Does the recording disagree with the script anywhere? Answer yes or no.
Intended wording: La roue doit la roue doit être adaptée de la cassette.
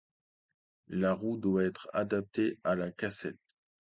yes